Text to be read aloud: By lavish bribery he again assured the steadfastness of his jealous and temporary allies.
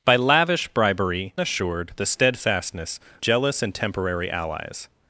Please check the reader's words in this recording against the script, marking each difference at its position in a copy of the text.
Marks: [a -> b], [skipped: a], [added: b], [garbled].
By lavish bribery [skipped: he again] assured the steadfastness [skipped: of his] jealous and temporary allies.